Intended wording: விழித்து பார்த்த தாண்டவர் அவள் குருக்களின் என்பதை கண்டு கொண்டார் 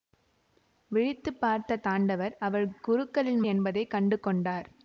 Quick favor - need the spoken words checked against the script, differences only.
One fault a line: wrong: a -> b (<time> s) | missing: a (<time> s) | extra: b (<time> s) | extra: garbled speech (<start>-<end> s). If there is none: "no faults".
no faults